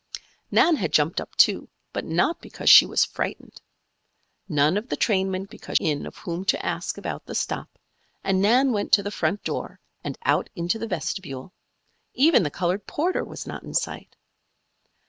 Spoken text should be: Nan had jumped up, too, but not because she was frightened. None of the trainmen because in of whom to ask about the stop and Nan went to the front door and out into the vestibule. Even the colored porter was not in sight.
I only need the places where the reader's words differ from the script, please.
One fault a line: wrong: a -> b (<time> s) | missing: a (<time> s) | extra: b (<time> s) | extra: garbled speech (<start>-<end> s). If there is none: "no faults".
no faults